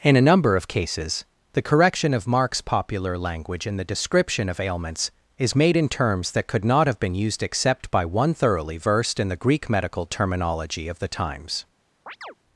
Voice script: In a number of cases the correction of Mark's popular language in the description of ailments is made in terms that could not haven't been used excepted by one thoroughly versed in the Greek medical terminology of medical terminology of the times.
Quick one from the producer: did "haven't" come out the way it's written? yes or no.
no